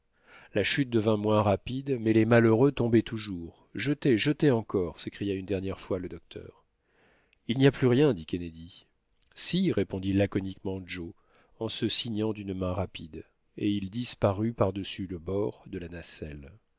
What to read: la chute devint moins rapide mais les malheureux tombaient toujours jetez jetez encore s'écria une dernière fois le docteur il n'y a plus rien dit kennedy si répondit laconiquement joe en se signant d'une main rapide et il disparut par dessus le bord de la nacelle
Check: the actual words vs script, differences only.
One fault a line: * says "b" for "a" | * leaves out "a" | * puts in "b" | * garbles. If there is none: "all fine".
all fine